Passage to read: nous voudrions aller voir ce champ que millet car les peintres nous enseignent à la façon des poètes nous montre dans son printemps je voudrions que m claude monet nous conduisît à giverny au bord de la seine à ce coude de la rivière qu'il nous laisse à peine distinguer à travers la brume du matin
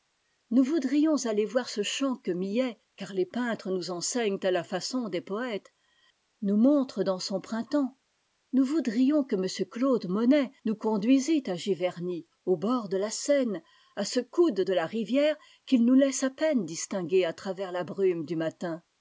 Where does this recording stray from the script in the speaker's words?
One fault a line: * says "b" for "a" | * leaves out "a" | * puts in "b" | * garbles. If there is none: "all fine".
* says "nous" for "je"